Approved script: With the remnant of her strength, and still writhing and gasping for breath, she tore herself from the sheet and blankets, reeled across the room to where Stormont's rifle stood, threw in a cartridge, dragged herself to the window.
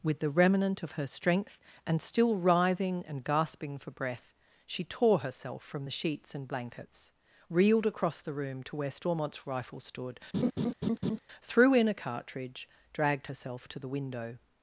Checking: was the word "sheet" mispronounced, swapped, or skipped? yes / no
yes